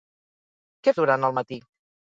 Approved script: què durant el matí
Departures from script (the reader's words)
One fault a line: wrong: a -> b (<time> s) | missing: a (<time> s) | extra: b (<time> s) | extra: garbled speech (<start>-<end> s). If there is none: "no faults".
no faults